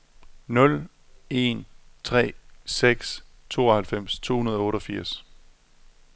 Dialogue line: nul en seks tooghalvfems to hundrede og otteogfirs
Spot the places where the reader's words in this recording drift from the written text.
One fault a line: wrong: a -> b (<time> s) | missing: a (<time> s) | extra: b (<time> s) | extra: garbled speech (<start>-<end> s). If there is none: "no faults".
extra: tre (2.0 s)